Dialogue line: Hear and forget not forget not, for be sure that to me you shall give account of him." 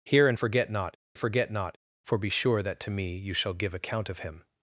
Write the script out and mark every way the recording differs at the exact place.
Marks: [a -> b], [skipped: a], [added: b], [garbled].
Hear and forget not forget not, for be sure that to me you shall give account of him."